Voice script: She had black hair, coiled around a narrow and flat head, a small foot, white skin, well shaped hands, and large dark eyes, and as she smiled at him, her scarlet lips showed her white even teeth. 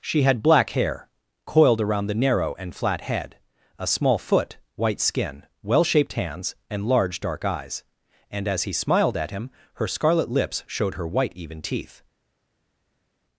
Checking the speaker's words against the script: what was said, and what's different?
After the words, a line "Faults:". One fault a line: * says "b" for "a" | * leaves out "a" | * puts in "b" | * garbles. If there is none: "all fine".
She had black hair, coiled around the narrow and flat head, a small foot, white skin, well shaped hands, and large dark eyes, and as he smiled at him, her scarlet lips showed her white even teeth.
Faults:
* says "the" for "a"
* says "he" for "she"